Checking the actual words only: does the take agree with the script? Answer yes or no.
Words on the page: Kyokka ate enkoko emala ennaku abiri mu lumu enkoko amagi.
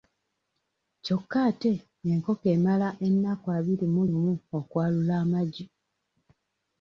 no